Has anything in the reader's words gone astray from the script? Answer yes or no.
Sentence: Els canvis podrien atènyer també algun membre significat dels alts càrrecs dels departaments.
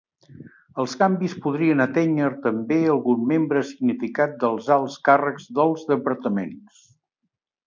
no